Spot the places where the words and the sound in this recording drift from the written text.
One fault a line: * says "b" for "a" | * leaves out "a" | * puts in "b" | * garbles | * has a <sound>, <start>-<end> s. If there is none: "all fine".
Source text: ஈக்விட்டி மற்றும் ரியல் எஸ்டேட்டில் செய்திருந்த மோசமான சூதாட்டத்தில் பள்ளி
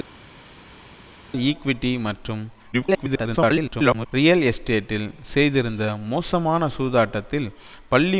* garbles